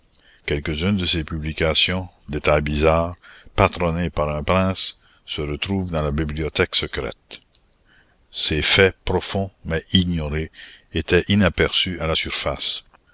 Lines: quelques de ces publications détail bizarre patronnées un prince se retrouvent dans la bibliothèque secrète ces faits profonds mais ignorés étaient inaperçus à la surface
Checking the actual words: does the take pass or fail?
fail